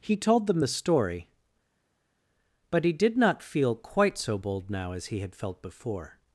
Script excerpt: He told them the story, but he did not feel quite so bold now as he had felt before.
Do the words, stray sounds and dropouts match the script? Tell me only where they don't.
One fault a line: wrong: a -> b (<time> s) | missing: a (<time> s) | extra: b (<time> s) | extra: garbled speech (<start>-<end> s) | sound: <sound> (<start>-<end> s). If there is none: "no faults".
no faults